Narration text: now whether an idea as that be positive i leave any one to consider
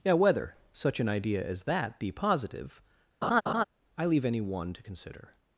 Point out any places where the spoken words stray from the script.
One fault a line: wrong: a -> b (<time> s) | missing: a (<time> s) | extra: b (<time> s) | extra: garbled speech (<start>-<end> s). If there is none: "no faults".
extra: such (0.7 s)